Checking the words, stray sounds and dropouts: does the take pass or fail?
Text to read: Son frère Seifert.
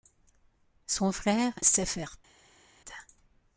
pass